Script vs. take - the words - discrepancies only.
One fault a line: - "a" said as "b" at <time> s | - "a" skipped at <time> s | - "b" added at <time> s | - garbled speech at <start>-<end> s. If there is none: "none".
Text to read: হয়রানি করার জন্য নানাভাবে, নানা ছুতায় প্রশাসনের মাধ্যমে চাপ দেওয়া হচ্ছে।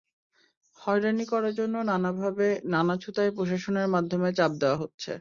none